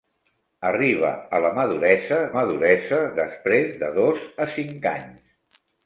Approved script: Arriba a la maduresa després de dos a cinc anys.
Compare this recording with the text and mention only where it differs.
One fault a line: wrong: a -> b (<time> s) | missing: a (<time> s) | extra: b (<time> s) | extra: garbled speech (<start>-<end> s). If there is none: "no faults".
extra: maduresa (2.4 s)